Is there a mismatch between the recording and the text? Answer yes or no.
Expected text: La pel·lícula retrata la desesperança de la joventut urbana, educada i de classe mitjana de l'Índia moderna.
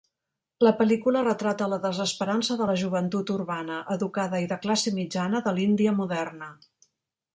no